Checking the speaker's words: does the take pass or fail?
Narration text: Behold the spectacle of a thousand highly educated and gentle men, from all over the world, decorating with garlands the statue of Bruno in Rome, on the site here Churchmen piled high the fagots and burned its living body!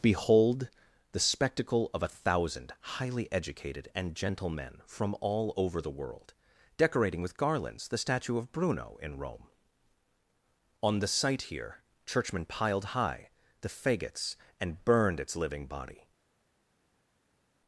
pass